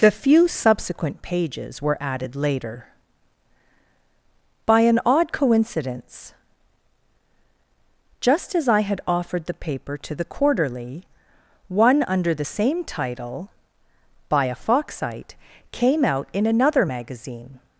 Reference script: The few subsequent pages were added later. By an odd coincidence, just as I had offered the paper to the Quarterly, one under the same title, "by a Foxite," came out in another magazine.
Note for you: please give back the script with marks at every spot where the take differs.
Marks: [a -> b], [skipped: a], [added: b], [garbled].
The few subsequent pages were added later. By an odd coincidence, just as I had offered the paper to the Quarterly, one under the same title, "by a Foxite," came out in another magazine.